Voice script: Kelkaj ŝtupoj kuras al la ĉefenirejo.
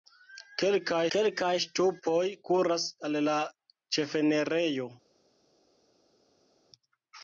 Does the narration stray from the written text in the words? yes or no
yes